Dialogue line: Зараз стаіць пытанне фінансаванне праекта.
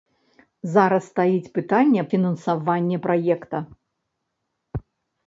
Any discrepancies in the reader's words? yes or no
no